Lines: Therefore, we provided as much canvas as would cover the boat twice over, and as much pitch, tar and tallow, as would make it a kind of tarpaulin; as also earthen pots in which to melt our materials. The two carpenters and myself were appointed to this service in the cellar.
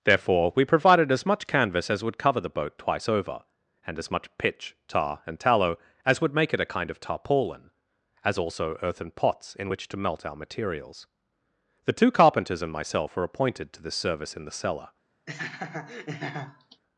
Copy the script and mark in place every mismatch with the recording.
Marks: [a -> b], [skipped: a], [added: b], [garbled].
Therefore, we provided as much canvas as would cover the boat twice over, and as much pitch, tar and tallow, as would make it a kind of tarpaulin; as also earthen pots in which to melt our materials. The two carpenters and myself were appointed to this service in the cellar.